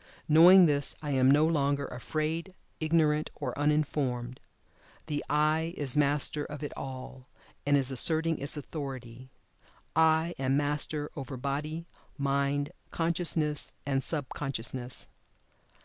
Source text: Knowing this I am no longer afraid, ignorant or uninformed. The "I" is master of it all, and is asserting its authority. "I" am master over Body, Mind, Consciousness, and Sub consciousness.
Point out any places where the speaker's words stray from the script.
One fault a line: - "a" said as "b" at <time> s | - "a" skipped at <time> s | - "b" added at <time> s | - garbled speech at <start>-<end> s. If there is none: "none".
none